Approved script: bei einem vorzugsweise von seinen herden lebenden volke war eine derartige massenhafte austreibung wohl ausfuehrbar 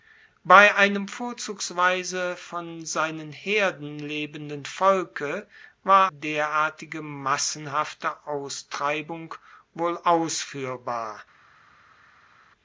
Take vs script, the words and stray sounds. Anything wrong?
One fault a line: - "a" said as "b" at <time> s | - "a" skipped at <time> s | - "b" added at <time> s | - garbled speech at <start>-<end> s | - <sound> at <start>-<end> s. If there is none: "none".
- "eine" skipped at 6.1 s